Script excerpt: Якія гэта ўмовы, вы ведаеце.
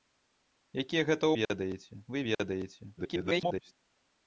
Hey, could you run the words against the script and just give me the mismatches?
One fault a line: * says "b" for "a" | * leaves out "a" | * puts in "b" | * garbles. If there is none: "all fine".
* says "ведаеце" for "ўмовы"
* garbles